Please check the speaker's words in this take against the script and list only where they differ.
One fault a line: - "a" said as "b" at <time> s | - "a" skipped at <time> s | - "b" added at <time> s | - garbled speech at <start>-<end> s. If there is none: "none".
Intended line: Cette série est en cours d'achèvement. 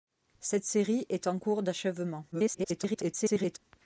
- garbled speech at 2.3-3.6 s